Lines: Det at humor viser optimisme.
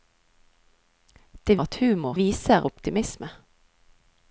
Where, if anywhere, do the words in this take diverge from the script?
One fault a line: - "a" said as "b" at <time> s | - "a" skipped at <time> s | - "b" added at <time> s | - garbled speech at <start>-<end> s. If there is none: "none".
none